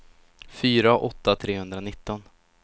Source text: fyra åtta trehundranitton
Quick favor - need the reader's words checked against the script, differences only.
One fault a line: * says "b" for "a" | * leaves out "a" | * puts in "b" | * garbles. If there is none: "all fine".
all fine